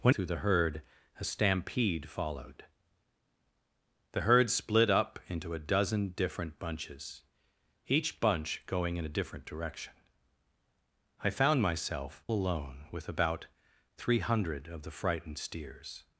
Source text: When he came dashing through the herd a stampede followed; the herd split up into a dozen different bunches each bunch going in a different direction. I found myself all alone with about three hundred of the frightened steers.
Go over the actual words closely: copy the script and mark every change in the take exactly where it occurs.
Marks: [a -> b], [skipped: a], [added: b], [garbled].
When [skipped: he came dashing] through the herd a stampede followed; the herd split up into a dozen different bunches each bunch going in a different direction. I found myself [skipped: all] alone with about three hundred of the frightened steers.